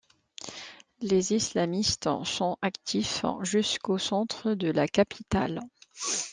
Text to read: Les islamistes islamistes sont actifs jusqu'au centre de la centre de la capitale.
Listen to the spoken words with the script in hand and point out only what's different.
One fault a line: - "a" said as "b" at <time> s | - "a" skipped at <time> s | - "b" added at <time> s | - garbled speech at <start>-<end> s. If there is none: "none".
- "islamistes" skipped at 2.1 s
- "centre de la" skipped at 4.9 s